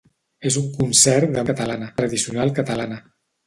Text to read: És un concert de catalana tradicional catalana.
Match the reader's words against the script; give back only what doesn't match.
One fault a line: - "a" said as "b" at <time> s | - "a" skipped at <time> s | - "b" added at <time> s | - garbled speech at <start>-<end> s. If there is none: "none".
none